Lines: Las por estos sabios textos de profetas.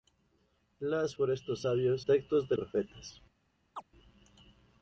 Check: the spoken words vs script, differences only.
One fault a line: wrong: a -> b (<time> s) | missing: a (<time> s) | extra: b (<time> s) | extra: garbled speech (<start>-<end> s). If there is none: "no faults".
no faults